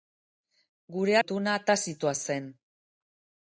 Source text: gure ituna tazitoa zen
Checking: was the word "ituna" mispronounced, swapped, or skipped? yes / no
no